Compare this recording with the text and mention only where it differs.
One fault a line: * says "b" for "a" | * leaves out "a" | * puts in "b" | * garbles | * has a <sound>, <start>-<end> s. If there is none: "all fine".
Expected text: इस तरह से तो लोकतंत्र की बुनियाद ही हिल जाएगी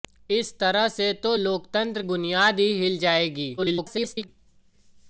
* leaves out "की"
* garbles